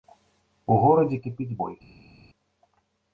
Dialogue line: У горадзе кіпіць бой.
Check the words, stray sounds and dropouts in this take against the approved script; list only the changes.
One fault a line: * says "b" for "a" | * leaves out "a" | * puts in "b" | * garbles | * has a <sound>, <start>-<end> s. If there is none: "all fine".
all fine